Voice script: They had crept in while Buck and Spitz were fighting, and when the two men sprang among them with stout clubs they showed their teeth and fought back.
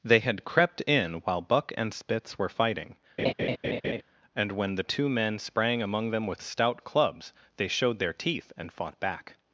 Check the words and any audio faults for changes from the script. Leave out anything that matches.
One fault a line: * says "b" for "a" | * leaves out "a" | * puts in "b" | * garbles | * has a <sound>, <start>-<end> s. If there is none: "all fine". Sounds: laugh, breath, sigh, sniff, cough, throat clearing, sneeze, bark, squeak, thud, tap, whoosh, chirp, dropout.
* has a laugh, 3.2-4.0 s